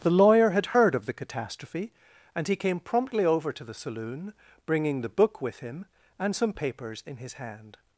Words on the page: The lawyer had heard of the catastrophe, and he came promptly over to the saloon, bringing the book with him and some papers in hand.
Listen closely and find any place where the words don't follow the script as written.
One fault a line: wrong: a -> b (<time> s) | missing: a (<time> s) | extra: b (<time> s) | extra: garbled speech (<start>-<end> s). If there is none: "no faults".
extra: his (7.2 s)